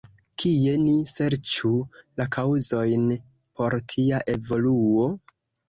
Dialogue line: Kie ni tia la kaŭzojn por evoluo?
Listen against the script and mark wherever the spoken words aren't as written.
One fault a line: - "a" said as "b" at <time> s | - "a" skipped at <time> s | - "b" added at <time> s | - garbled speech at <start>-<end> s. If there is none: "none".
- "tia" said as "serĉu" at 1.1 s
- "tia" added at 4.0 s